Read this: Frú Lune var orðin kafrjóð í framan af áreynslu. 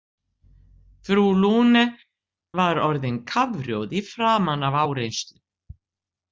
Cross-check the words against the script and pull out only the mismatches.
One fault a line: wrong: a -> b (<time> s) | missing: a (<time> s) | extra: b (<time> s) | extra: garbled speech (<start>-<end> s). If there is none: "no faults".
no faults